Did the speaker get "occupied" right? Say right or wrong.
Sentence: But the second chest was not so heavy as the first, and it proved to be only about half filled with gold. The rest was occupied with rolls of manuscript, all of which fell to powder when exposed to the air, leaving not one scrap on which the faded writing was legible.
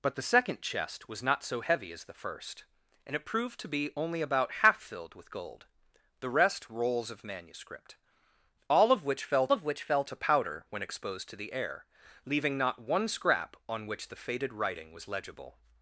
wrong